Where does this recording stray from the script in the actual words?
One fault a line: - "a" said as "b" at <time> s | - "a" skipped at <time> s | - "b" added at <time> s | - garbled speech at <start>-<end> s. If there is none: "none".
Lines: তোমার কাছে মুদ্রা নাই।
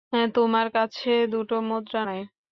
- "দুটো" added at 1.3 s